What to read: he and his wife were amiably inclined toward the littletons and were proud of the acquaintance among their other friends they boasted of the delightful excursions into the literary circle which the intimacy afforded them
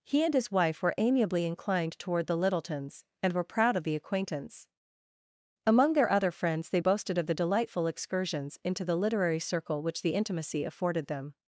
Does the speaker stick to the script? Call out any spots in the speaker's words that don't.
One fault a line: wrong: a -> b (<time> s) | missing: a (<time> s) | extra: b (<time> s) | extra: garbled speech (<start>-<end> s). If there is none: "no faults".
no faults